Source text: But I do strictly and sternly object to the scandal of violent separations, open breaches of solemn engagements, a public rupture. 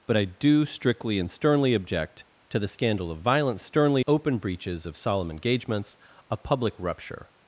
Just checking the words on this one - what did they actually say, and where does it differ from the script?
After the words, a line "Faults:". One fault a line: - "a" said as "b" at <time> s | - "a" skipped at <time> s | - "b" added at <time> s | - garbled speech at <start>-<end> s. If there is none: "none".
But I do strictly and sternly object to the scandal of violent sternly, open breaches of solemn engagements, a public rupture.
Faults:
- "separations" said as "sternly" at 3.6 s